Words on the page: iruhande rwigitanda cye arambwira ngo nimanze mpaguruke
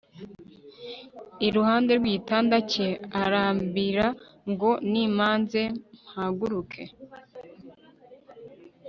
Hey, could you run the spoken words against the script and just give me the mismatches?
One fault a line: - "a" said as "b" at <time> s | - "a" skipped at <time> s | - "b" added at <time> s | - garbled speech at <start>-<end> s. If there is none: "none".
none